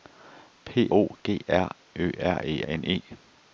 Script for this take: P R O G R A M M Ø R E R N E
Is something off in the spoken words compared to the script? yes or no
yes